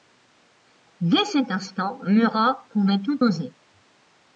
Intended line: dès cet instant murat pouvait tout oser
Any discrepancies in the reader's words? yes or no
no